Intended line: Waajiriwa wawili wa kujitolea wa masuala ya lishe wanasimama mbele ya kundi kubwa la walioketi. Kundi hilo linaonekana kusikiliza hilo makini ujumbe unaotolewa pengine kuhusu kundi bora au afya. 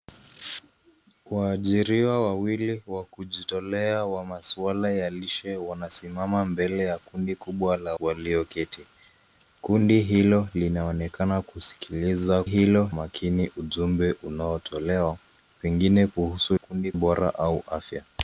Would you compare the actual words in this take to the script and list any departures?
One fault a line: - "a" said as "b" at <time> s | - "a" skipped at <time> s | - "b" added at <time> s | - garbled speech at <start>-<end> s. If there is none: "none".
none